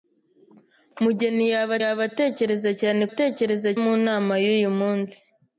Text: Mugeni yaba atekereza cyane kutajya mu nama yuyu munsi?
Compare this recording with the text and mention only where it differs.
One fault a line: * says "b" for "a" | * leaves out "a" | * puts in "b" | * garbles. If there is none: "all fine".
* puts in "yaba"
* says "atekereza" for "kutajya"